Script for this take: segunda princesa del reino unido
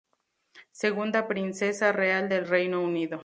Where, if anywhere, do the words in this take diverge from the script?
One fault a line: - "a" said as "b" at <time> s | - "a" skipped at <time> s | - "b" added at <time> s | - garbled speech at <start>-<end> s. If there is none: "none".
- "real" added at 1.9 s